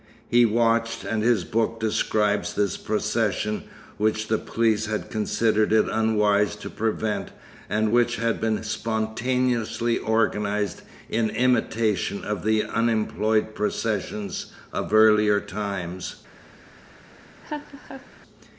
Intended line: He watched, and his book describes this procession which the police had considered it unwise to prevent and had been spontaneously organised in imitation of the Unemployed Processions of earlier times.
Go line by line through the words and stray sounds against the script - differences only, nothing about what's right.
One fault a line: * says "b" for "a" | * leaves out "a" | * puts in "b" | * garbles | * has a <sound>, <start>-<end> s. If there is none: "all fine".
* puts in "which"
* has a laugh, 17.4-18.1 s